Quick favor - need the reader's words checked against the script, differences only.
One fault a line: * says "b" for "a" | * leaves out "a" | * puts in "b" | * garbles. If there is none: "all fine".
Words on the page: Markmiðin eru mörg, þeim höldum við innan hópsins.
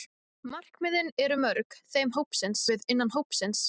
* says "hópsins" for "höldum"